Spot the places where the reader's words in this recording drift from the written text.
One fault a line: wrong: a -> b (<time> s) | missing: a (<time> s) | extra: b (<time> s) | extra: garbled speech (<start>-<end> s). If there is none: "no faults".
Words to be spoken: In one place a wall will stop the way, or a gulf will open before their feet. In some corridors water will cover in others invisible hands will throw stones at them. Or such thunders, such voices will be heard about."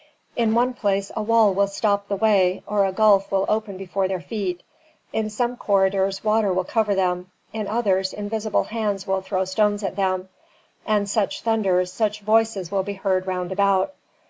extra: them (6.9 s)
wrong: Or -> And (10.9 s)
extra: round (13.3 s)